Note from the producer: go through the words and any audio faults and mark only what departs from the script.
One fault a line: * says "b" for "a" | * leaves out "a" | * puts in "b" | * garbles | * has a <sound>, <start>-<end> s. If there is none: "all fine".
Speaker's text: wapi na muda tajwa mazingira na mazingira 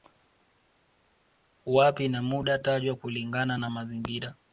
* says "kulingana" for "mazingira"